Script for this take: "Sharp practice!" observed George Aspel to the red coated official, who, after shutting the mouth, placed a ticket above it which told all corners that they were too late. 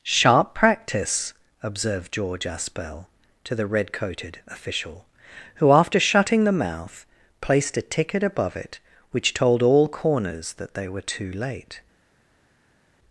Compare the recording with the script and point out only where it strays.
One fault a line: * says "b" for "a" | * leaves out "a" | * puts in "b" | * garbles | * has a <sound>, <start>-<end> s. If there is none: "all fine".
all fine